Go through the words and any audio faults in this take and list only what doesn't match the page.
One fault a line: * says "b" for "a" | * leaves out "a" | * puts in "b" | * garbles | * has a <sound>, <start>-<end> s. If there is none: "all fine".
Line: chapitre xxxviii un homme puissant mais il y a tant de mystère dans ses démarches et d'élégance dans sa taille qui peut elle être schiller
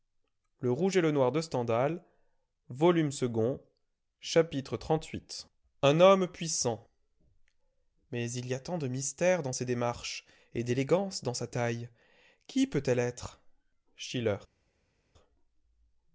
all fine